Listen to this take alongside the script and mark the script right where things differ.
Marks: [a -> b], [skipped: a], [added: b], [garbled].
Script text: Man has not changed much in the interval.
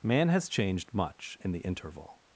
Man has [skipped: not] changed much in the interval.